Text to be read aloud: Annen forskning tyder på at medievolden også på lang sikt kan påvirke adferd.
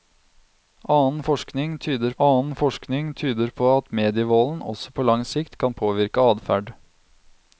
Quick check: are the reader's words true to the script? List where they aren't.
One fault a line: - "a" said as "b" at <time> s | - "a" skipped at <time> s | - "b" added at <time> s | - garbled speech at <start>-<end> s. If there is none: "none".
- "annen forskning tyder" added at 2.2 s